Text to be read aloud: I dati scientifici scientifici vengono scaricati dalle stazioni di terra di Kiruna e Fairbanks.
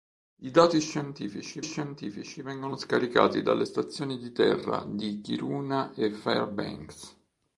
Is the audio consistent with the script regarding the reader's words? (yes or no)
yes